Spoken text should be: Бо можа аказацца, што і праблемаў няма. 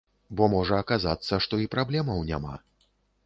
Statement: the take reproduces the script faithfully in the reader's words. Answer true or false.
true